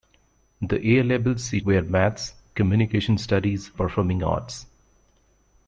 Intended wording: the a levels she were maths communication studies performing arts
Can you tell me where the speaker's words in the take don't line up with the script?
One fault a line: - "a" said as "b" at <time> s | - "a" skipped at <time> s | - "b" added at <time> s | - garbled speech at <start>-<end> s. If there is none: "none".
none